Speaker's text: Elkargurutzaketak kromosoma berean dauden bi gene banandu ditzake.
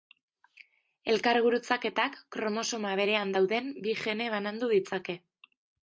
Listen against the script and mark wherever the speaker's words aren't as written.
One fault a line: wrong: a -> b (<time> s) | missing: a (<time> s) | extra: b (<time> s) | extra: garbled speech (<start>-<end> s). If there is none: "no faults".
no faults